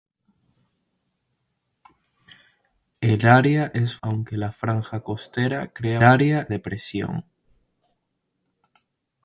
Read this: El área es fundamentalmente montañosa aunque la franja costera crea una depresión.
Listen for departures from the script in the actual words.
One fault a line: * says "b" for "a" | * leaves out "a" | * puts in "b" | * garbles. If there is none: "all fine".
* leaves out "fundamentalmente montañosa"
* says "área" for "una"